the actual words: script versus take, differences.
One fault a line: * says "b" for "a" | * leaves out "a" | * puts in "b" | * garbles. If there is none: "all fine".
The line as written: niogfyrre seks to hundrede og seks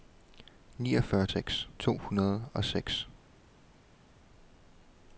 all fine